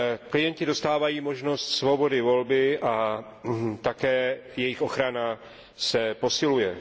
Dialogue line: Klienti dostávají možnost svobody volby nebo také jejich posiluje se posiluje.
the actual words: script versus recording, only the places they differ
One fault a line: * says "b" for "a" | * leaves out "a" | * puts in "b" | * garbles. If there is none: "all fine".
* says "a" for "nebo"
* says "ochrana" for "posiluje"